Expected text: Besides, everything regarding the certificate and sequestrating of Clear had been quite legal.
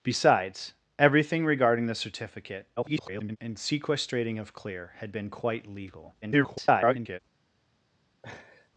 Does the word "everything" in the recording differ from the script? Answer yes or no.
no